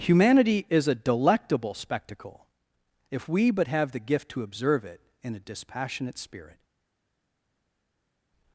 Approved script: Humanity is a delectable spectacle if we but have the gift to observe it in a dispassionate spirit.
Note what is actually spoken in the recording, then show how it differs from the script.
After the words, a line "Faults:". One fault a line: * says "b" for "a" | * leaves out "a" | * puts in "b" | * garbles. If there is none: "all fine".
Humanity is a delectable spectacle if we but have the gift to observe it in a dispassionate spirit.
Faults:
all fine